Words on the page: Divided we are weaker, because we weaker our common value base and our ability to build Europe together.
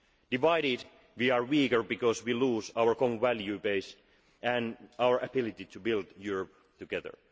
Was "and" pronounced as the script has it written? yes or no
yes